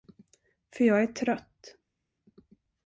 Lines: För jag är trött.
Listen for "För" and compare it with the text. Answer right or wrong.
right